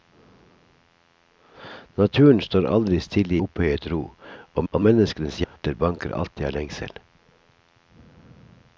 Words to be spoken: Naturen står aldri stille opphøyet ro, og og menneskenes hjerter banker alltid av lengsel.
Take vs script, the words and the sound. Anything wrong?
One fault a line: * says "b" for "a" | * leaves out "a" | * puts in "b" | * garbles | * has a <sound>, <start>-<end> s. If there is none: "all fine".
* has a dropout, 5.4-5.6 s